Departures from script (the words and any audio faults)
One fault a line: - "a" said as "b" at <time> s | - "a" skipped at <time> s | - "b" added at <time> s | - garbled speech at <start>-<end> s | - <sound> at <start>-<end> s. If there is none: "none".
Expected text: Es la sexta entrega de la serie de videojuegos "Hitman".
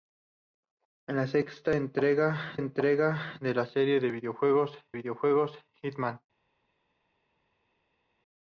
- "entrega" added at 2.6 s
- "videojuegos" added at 4.9 s